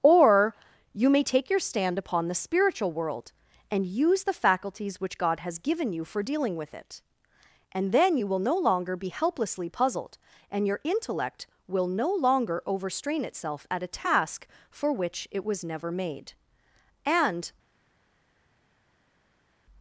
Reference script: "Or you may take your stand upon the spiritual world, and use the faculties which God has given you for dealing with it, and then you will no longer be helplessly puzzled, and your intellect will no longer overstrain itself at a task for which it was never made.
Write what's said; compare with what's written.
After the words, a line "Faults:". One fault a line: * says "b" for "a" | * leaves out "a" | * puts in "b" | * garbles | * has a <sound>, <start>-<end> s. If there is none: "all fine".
"Or you may take your stand upon the spiritual world, and use the faculties which God has given you for dealing with it, and then you will no longer be helplessly puzzled, and your intellect will no longer overstrain itself at a task for which it was never made. And
Faults:
* puts in "And"